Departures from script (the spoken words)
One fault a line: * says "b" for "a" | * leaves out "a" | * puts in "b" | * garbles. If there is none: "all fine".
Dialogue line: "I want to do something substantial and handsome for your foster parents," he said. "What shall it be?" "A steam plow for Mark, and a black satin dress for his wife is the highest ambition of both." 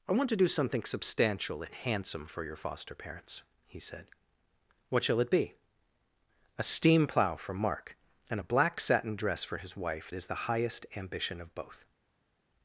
all fine